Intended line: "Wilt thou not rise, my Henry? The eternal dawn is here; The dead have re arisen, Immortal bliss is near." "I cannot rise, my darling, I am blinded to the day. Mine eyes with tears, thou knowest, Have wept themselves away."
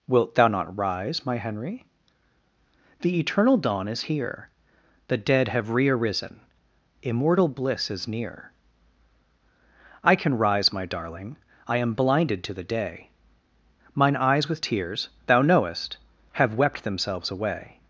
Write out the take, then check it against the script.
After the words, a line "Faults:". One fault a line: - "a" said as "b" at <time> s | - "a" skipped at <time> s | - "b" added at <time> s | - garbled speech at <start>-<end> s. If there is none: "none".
"Wilt thou not rise, my Henry? The eternal dawn is here; The dead have re arisen, Immortal bliss is near." "I can rise, my darling, I am blinded to the day. Mine eyes with tears, thou knowest, Have wept themselves away."
Faults:
- "cannot" said as "can" at 10.2 s